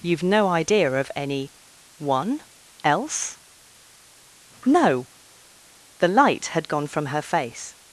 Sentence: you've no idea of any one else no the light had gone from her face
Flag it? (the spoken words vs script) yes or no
no